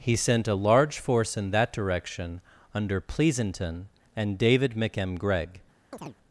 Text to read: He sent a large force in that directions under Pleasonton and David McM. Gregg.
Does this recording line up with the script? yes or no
no